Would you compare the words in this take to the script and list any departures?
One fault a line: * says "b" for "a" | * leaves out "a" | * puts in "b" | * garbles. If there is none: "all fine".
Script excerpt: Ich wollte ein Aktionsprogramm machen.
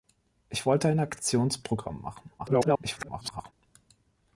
* garbles